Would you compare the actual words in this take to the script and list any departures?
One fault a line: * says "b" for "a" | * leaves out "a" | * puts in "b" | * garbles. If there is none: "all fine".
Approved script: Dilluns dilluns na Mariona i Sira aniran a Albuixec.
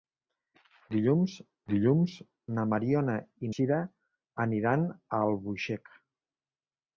all fine